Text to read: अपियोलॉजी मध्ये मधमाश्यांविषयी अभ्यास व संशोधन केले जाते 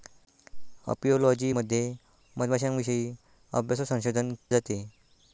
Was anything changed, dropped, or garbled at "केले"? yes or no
yes